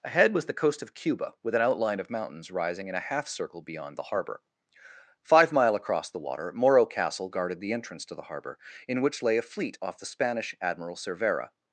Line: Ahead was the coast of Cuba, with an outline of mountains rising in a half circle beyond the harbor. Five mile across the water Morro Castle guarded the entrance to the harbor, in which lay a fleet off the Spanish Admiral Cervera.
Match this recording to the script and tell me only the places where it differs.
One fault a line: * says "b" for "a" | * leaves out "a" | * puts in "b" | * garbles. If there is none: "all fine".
all fine